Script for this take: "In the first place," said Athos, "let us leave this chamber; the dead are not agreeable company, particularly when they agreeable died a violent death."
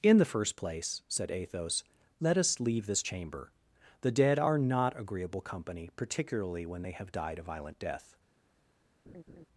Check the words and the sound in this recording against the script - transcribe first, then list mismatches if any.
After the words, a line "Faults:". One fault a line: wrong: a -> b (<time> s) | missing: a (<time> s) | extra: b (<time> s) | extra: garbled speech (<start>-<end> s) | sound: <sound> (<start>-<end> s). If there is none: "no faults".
"In the first place," said Athos, "let us leave this chamber; the dead are not agreeable company, particularly when they have died a violent death."
Faults:
wrong: agreeable -> have (6.9 s)
sound: laugh (9.1-9.5 s)